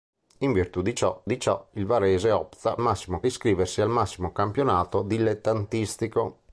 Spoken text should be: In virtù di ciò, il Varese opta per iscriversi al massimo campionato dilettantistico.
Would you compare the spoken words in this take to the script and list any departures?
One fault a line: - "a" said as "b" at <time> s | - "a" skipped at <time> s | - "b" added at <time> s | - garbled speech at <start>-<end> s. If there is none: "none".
- "di ciò" added at 1.3 s
- "per" said as "massimo" at 2.8 s